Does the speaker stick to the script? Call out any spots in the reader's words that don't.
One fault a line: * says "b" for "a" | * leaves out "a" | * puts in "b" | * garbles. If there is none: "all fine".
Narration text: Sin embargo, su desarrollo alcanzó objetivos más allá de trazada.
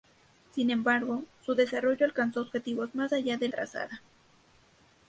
all fine